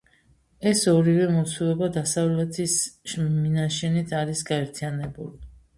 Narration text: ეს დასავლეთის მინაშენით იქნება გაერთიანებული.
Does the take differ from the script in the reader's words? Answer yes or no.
yes